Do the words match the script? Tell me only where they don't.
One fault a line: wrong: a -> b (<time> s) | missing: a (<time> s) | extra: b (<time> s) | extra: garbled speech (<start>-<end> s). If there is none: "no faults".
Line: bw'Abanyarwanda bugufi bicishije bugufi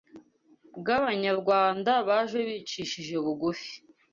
wrong: bugufi -> baje (2.1 s)